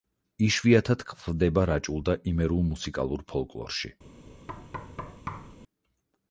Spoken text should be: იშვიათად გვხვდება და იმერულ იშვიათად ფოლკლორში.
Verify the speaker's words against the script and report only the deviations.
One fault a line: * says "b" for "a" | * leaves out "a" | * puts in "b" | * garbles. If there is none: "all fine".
* puts in "რაჭულ"
* says "მუსიკალურ" for "იშვიათად"